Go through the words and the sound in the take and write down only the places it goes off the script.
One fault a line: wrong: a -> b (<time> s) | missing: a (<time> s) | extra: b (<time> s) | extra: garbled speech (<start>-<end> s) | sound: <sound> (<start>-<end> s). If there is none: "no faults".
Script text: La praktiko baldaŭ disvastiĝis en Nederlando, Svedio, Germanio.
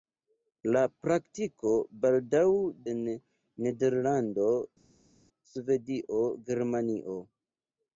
missing: disvastiĝis (2.4 s)